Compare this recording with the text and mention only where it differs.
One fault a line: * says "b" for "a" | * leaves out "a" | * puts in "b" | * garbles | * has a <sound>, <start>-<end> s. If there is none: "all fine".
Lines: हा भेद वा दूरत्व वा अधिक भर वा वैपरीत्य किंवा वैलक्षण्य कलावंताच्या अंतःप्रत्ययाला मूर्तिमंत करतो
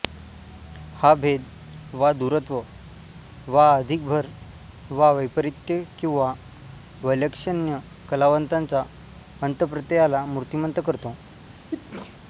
* has a sneeze, 11.5-12.2 s